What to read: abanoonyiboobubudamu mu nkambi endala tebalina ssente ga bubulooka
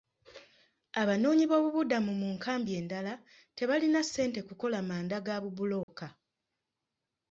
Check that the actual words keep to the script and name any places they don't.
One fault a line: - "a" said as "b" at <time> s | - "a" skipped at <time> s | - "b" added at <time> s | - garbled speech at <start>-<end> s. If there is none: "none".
- "kukola manda" added at 4.5 s